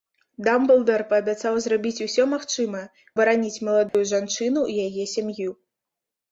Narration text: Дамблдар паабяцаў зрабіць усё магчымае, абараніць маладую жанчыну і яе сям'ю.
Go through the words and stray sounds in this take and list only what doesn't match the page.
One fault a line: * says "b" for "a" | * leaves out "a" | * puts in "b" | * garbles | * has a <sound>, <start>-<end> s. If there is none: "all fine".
* has a dropout, 3.9-3.9 s